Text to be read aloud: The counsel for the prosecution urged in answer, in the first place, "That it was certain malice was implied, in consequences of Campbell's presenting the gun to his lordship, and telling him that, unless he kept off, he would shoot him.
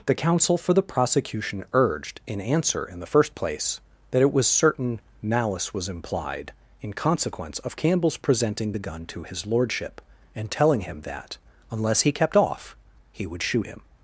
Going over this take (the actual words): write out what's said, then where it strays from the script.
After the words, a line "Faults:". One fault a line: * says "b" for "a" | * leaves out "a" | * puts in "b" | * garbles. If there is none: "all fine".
The counsel for the prosecution urged in answer, in the first place, "That it was certain malice was implied, in consequence of Campbell's presenting the gun to his lordship, and telling him that, unless he kept off, he would shoot him.
Faults:
* says "consequence" for "consequences"